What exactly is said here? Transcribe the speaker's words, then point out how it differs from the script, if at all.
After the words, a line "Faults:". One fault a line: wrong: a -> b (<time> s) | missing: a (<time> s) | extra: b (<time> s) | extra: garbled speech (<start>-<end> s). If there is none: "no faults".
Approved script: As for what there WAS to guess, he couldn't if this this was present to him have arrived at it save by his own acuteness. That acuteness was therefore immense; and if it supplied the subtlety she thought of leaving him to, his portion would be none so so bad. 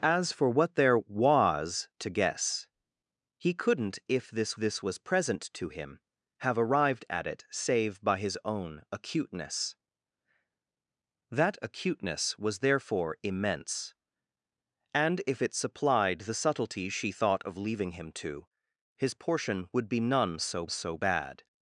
As for what there WAS to guess, he couldn't if this this was present to him have arrived at it save by his own acuteness. That acuteness was therefore immense; and if it supplied the subtlety she thought of leaving him to, his portion would be none so so bad.
Faults:
no faults